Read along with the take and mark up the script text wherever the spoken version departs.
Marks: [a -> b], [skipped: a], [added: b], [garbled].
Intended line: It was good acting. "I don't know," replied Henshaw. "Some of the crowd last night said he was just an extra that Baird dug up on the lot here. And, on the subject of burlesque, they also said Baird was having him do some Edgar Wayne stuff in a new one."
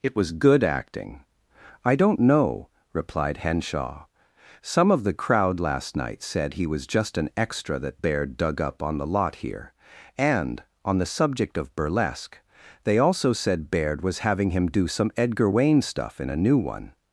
It was good acting. "I don't know," replied Henshaw. "Some of the crowd last night said he was just an extra that Baird dug up on the lot here. And, on the subject of burlesque, they also said Baird was having him do some Edgar Wayne stuff in a new one."